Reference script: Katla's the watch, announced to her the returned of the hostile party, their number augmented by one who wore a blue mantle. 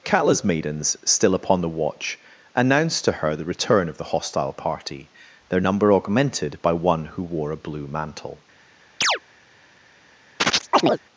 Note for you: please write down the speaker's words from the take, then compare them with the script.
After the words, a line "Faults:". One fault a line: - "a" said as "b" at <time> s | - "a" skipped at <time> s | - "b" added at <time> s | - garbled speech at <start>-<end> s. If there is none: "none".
Katla's maidens, still upon the watch, announced to her the return of the hostile party, their number augmented by one who wore a blue mantle.
Faults:
- "maidens still upon" added at 0.4 s
- "returned" said as "return" at 3.5 s